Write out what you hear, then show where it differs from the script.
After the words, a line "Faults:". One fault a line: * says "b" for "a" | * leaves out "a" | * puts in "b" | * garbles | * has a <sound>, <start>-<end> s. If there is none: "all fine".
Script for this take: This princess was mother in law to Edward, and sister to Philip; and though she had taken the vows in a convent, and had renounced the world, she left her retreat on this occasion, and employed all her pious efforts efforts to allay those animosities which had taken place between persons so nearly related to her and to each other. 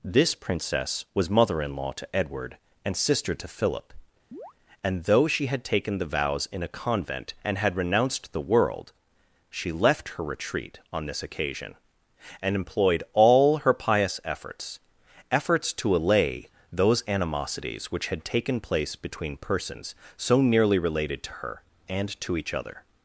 This princess was mother in law to Edward, and sister to Philip; and though she had taken the vows in a convent, and had renounced the world, she left her retreat on this occasion, and employed all her pious efforts efforts to allay those animosities which had taken place between persons so nearly related to her and to each other.
Faults:
* has a chirp, 4.3-4.5 s